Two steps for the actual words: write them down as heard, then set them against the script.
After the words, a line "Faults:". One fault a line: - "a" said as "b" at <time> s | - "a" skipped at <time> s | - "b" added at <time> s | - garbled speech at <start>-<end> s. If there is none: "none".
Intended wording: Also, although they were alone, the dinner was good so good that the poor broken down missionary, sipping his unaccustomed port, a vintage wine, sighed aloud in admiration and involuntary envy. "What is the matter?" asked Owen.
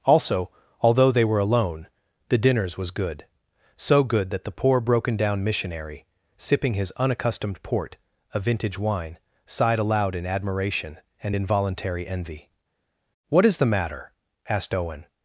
Also, although they were alone, the dinners was good so good that the poor broken down missionary, sipping his unaccustomed port, a vintage wine, sighed aloud in admiration and involuntary envy. "What is the matter?" asked Owen.
Faults:
- "dinner" said as "dinners" at 2.4 s